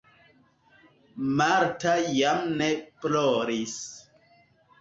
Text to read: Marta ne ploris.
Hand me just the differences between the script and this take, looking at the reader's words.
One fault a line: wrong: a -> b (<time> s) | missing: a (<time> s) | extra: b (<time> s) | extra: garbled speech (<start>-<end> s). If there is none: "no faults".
extra: jam (2.2 s)